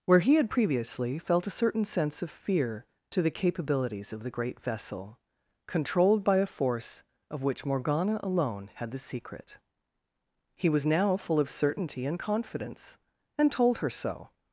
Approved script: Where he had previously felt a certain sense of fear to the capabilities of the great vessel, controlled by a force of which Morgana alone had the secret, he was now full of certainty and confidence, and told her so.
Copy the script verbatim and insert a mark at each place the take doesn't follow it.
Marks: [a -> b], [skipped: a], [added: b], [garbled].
Where he had previously felt a certain sense of fear to the capabilities of the great vessel, controlled by a force of which Morgana alone had the secret, he was now full of certainty and confidence, and told her so.